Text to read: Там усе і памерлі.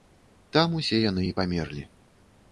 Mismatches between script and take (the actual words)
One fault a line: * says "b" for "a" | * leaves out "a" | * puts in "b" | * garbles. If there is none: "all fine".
* puts in "яны"